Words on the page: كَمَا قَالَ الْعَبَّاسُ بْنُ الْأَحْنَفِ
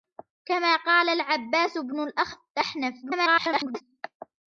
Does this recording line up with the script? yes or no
no